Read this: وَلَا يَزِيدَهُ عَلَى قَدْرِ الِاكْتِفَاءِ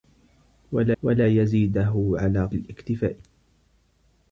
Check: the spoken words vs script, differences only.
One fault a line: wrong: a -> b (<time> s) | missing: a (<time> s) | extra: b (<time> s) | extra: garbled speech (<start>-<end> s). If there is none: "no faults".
extra: وَلَا (1.0 s)
missing: قَدْرِ (2.4 s)